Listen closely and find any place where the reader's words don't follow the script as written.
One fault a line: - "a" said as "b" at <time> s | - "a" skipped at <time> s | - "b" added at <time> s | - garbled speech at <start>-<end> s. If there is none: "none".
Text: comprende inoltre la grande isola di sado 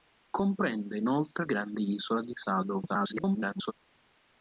- "la" skipped at 1.4 s
- garbled speech at 2.9-3.7 s